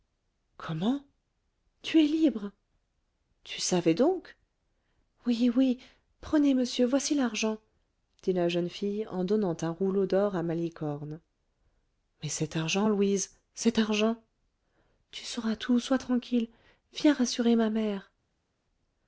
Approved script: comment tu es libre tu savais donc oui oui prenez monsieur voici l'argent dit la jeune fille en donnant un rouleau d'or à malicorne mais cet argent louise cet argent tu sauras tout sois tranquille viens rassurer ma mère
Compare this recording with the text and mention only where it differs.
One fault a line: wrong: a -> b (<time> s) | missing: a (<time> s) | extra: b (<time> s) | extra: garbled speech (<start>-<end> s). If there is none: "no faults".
no faults